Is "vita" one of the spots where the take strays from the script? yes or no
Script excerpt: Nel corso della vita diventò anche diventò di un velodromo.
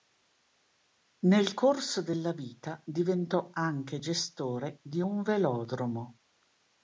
no